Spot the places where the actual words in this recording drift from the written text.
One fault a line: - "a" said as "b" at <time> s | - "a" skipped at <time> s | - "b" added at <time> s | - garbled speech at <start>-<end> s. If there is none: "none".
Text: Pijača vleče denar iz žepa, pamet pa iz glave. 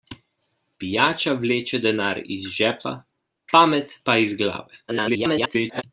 - garbled speech at 4.9-5.8 s